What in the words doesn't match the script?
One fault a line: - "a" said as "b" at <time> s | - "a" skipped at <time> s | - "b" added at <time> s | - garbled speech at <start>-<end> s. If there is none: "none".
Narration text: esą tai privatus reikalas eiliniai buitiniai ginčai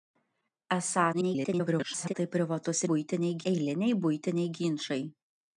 - garbled speech at 1.1-2.1 s
- "reikalas" said as "buitiniai" at 2.9 s